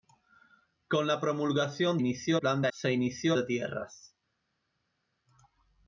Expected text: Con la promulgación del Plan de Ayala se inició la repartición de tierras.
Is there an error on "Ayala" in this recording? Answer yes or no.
yes